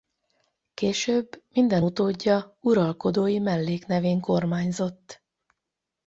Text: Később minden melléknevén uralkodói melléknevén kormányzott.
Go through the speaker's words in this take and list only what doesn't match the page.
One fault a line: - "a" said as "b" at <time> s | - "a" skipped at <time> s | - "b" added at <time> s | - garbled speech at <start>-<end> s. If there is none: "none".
- "melléknevén" said as "utódja" at 1.8 s